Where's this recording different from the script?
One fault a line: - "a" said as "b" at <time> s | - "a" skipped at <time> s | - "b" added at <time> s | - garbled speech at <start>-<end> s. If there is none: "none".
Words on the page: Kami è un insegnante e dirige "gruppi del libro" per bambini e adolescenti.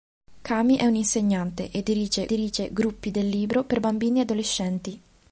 - "dirige" added at 2.3 s